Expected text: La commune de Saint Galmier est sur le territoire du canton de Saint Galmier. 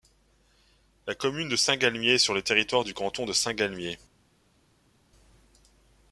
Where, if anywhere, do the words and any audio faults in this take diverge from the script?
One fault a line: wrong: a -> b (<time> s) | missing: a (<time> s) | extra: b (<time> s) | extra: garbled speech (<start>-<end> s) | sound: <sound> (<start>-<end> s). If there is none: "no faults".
no faults